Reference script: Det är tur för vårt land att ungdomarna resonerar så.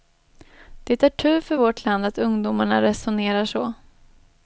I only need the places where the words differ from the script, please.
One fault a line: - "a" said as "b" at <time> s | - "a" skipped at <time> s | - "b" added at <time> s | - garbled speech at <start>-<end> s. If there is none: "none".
none